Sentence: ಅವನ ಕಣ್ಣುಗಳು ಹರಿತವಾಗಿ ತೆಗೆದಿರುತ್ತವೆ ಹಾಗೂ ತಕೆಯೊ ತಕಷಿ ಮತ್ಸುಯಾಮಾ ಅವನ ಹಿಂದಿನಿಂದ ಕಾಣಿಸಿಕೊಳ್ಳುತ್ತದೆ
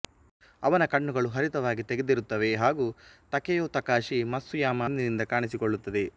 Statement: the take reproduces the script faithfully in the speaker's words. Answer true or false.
false